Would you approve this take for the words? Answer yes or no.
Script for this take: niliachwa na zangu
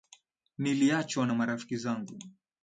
no